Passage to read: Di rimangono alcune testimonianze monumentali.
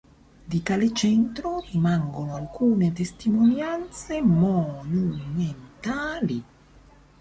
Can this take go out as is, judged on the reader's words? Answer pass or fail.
fail